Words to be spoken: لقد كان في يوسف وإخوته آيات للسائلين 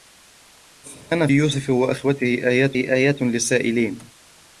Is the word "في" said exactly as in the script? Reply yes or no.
no